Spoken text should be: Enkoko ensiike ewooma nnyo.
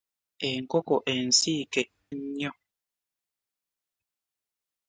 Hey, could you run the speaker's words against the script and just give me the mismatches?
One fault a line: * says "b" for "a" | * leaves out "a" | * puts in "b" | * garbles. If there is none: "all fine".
* leaves out "ewooma"